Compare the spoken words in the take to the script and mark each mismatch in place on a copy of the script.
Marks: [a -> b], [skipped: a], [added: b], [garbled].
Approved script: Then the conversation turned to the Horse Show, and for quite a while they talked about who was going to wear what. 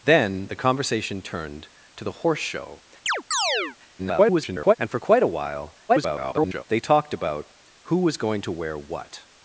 Then the conversation turned to the Horse Show, [garbled] and for quite a while [garbled] they talked about who was going to wear what.